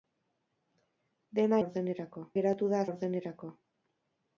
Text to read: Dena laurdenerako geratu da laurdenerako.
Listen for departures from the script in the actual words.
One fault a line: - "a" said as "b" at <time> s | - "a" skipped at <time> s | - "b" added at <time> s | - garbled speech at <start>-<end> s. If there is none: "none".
none